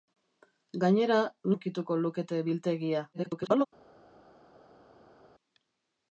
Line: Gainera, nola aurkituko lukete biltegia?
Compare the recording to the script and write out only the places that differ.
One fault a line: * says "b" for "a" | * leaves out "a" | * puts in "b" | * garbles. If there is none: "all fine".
* leaves out "nola"
* garbles